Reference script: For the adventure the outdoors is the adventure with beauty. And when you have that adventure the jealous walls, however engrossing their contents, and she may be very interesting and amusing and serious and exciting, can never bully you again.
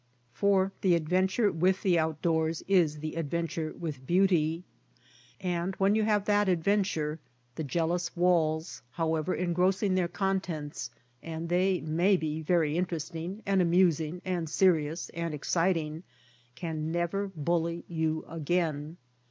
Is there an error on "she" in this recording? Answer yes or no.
yes